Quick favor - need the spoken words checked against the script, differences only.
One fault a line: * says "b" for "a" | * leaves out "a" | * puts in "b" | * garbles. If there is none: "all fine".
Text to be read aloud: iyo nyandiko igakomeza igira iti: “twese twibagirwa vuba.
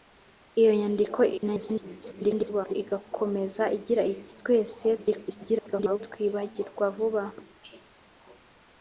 * garbles
* garbles